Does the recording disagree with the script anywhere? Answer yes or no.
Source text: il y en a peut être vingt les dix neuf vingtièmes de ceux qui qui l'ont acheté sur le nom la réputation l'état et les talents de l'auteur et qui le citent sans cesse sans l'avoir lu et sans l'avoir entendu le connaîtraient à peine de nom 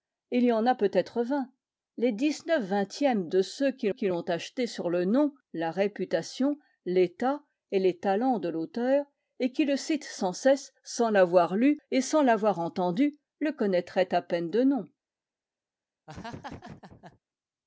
no